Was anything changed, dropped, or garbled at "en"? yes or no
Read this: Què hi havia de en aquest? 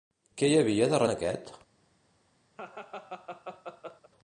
no